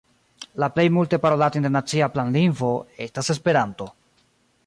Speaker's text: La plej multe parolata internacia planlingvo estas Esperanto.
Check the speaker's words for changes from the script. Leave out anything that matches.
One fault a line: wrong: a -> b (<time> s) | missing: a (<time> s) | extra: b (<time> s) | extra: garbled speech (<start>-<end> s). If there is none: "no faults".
no faults